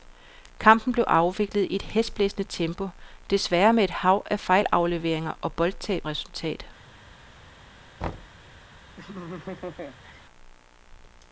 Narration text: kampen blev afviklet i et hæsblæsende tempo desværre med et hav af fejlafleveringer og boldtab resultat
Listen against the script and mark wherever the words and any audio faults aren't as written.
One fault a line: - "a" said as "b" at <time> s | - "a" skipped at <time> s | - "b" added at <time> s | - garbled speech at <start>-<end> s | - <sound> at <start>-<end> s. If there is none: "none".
- thud at 8.0-8.4 s
- laugh at 9.0-10.2 s